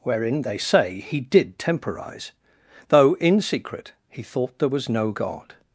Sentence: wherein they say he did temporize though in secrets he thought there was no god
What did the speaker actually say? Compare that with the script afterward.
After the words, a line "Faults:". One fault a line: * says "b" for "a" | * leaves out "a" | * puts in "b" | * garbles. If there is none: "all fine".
wherein they say he did temporize though in secret he thought there was no god
Faults:
* says "secret" for "secrets"